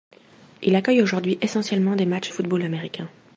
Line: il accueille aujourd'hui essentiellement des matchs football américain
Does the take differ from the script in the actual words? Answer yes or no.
no